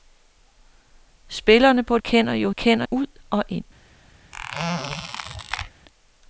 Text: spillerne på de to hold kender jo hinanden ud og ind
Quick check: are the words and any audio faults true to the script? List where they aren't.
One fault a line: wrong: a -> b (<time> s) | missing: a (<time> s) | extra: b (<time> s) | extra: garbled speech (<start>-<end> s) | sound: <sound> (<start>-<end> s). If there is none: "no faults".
missing: de to hold (2.0 s)
wrong: hinanden -> kender (2.5 s)
sound: squeak (4.3-5.7 s)